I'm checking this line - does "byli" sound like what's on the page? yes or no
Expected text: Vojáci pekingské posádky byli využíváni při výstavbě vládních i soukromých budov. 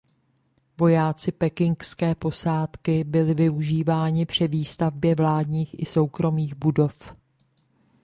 yes